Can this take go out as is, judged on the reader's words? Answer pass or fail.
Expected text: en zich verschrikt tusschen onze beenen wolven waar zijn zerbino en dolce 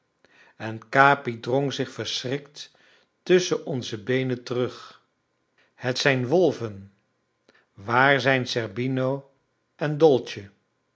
fail